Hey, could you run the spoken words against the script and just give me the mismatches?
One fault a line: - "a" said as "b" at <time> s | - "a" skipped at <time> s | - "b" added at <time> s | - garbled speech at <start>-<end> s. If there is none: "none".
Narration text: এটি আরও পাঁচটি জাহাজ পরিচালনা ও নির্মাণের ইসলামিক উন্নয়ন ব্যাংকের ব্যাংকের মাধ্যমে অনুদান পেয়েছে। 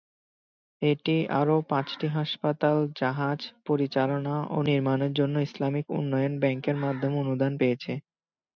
- "হাসপাতাল" added at 2.2 s
- "জন্য" added at 5.2 s
- "ব্যাংকের" skipped at 6.8 s